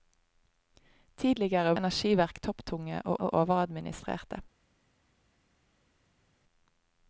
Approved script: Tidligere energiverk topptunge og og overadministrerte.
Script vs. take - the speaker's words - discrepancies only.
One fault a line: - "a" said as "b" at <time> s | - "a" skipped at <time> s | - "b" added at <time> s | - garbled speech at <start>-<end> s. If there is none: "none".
none